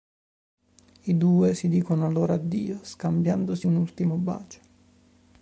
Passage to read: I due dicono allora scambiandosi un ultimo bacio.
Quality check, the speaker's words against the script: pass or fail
fail